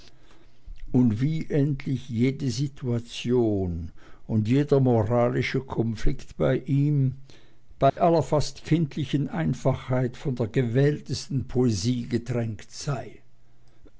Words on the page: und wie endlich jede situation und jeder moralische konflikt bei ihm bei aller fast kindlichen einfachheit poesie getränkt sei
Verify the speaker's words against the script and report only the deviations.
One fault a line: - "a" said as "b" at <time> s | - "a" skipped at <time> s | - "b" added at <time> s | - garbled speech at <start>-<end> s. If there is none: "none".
- "von der gewähltesten" added at 10.2 s